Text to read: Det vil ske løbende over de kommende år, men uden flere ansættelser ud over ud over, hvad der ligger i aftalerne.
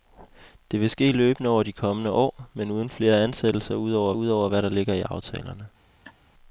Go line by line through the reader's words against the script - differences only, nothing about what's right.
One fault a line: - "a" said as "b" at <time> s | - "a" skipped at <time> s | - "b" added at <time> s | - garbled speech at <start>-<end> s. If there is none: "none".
none